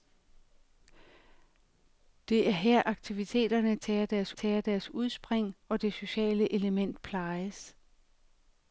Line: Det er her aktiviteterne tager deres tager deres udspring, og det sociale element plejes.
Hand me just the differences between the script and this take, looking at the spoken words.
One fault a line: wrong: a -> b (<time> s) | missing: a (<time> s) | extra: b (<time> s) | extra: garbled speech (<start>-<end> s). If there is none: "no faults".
no faults